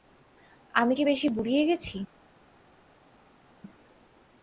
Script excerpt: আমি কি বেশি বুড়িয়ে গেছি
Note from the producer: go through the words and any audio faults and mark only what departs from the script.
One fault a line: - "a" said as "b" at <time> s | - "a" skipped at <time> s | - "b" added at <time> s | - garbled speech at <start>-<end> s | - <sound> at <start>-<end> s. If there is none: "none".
none